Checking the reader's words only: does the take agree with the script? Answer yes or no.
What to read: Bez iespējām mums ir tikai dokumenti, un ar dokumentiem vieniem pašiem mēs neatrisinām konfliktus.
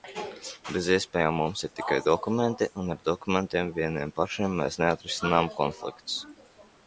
yes